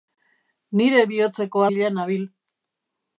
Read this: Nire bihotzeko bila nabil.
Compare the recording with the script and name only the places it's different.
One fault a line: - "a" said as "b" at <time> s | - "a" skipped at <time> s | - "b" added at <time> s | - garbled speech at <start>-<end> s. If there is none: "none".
none